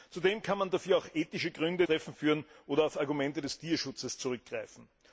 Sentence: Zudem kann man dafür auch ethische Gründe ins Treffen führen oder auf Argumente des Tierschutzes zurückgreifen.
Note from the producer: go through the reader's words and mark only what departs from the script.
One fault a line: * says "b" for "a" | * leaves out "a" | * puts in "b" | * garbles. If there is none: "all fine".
* leaves out "ins"